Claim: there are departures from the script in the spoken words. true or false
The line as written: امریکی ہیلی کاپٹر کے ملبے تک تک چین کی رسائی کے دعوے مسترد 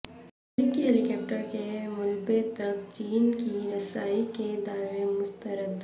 true